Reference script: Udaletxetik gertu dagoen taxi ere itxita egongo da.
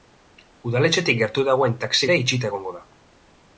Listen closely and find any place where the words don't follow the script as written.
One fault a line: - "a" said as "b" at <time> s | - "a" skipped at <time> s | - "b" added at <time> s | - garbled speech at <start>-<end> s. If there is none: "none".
none